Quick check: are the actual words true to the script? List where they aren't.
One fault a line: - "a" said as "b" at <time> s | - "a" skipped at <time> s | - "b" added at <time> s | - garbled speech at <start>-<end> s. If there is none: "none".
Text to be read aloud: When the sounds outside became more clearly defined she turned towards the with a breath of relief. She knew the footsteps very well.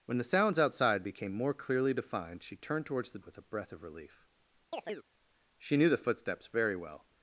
none